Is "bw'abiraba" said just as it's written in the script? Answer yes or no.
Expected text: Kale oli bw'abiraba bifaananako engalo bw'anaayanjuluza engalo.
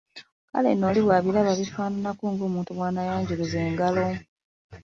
yes